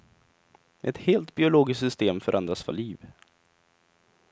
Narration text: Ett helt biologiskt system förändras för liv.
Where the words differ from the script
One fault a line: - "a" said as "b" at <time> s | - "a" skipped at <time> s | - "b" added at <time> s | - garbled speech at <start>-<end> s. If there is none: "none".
none